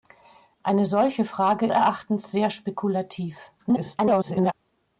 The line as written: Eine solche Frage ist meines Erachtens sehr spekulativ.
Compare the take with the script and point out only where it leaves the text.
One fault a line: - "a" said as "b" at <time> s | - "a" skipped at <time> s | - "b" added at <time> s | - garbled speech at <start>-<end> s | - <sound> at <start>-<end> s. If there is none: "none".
- "ist meines" skipped at 1.7 s
- garbled speech at 3.6-4.5 s